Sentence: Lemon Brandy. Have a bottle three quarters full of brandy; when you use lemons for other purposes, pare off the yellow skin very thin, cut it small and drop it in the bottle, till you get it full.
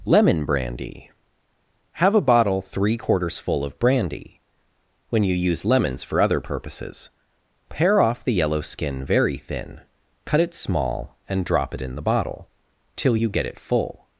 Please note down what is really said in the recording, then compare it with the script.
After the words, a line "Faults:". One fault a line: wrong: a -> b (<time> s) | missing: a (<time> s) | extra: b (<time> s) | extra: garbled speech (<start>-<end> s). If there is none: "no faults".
Lemon Brandy. Have a bottle three quarters full of brandy; when you use lemons for other purposes, pare off the yellow skin very thin, cut it small and drop it in the bottle, till you get it full.
Faults:
no faults